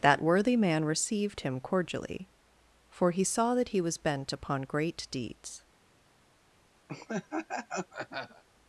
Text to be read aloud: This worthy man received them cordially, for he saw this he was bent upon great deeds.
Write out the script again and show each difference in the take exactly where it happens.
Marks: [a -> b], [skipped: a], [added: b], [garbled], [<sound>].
[This -> That] worthy man received [them -> him] cordially, for he saw [this -> that] he was bent upon great deeds. [laugh]